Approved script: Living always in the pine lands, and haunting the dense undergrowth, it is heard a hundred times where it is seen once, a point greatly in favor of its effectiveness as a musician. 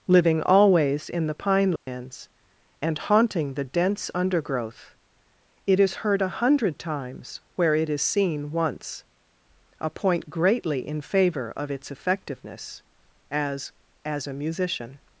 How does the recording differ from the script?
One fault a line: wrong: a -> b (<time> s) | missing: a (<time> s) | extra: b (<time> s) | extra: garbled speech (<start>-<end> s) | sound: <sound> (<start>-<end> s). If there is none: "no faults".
sound: dropout (1.8-1.9 s)
extra: as (14.0 s)